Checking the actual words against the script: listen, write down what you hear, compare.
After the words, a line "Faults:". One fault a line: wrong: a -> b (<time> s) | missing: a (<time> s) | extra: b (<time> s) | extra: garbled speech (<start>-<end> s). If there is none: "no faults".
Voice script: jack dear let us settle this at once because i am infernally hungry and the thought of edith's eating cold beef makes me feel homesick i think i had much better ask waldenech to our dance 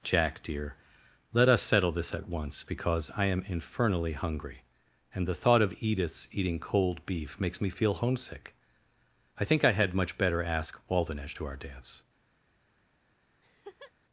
jack dear let us settle this at once because i am infernally hungry and the thought of edith's eating cold beef makes me feel homesick i think i had much better ask waldenech to our dance
Faults:
no faults